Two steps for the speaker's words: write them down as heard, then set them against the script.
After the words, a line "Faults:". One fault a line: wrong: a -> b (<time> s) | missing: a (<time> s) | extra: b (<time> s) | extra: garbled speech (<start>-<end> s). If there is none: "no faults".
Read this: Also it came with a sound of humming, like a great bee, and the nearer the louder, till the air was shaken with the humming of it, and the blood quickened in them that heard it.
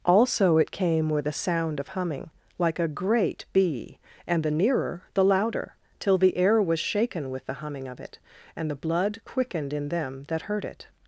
Also it came with a sound of humming, like a great bee, and the nearer the louder, till the air was shaken with the humming of it, and the blood quickened in them that heard it.
Faults:
no faults